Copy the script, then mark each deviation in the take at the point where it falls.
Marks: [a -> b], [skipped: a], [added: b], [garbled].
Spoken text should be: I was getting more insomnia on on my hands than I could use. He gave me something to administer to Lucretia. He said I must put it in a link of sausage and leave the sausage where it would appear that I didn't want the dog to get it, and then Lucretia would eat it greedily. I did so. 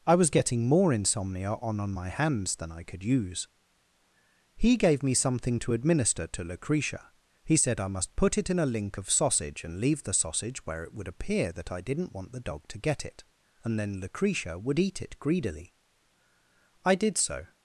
I was getting more insomnia on on my hands than I could use. He gave me something to administer to Lucretia. He said I must put it in a link of sausage and leave the sausage where it would appear that I didn't want the dog to get it, and then Lucretia would eat it greedily. I did so.